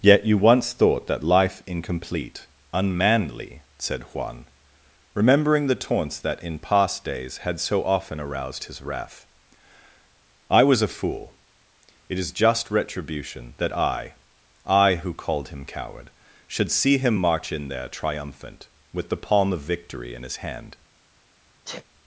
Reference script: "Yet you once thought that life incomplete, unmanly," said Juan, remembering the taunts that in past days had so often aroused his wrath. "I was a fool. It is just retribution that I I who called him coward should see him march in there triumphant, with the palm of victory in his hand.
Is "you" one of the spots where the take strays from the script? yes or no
no